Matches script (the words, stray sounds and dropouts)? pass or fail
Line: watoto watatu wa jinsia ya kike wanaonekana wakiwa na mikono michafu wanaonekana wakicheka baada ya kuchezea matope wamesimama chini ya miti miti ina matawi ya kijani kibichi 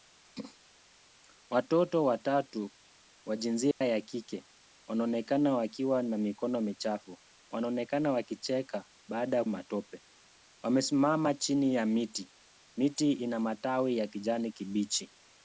fail